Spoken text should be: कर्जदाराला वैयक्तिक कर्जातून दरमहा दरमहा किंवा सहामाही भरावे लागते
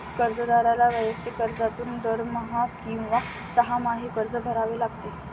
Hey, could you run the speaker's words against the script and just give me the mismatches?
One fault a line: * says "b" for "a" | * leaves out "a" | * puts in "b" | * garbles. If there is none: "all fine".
* leaves out "दरमहा"
* puts in "कर्ज"